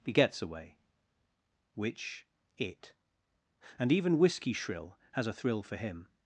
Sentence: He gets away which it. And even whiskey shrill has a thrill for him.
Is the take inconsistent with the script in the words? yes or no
no